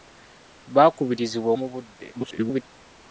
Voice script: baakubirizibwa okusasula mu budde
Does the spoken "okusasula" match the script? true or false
false